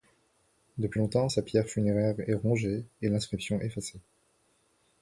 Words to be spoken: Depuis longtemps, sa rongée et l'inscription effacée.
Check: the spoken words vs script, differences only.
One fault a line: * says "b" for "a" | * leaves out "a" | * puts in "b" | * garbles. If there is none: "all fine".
* puts in "pierre funéraire est"